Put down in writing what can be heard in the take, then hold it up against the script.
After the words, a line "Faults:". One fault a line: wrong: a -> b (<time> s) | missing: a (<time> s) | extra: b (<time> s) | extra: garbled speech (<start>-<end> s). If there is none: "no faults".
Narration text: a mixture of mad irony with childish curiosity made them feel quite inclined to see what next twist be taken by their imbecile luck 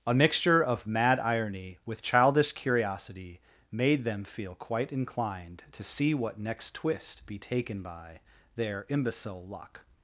a mixture of mad irony with childish curiosity made them feel quite inclined to see what next twist be taken by their imbecile luck
Faults:
no faults